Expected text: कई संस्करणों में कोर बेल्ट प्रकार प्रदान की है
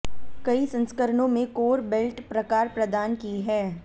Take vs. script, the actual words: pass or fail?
pass